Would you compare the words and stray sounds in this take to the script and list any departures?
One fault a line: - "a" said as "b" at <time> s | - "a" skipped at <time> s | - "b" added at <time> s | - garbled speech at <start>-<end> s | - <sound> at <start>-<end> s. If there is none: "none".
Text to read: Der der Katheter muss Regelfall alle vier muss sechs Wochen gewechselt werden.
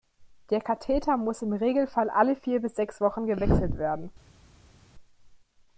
- "der" skipped at 0.6 s
- "im" added at 1.4 s
- "muss" said as "bis" at 2.6 s